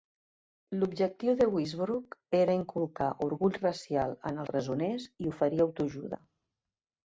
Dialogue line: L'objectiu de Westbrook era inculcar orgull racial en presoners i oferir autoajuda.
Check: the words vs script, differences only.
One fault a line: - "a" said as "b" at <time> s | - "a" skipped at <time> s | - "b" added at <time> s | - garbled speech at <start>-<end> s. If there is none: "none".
none